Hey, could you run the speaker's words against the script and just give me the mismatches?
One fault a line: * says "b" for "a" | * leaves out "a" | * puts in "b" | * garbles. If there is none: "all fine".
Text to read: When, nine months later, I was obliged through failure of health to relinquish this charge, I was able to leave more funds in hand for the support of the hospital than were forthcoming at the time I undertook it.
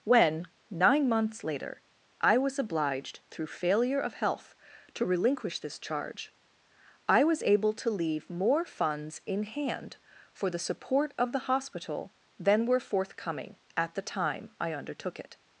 all fine